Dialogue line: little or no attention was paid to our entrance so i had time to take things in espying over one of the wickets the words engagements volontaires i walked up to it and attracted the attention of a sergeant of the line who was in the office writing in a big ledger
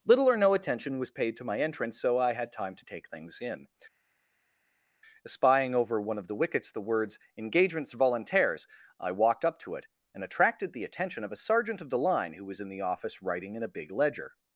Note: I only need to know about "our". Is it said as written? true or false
false